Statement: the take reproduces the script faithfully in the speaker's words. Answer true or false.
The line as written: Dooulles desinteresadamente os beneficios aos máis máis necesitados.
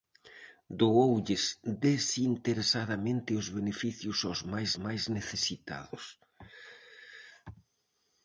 true